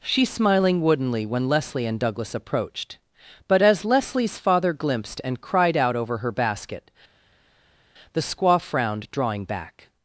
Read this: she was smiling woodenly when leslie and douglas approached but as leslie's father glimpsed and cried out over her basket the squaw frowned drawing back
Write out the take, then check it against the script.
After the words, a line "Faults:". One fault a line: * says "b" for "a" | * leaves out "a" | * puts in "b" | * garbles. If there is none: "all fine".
she smiling woodenly when leslie and douglas approached but as leslie's father glimpsed and cried out over her basket the squaw frowned drawing back
Faults:
* leaves out "was"